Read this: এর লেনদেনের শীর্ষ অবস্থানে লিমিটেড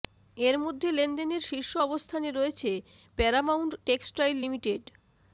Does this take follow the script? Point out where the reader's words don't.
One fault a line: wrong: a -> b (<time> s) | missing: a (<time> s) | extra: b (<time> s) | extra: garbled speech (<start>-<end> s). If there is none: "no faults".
extra: মধ্যে (0.6 s)
extra: রয়েছে প্যারামাউন্ট টেক্সটাইল (2.3 s)